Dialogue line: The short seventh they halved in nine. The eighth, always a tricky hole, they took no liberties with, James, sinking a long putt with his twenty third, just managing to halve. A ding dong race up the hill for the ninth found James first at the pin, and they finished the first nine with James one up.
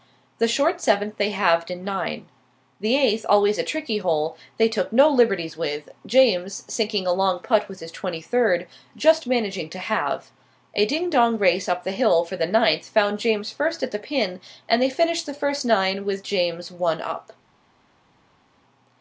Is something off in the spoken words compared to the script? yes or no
no